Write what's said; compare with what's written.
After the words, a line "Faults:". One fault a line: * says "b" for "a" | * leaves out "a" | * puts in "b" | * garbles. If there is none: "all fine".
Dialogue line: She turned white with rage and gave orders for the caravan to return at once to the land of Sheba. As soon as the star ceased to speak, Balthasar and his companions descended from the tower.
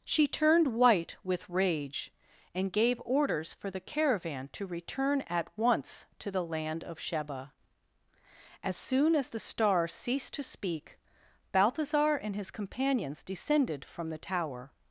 She turned white with rage and gave orders for the caravan to return at once to the land of Sheba. As soon as the star ceased to speak, Balthasar and his companions descended from the tower.
Faults:
all fine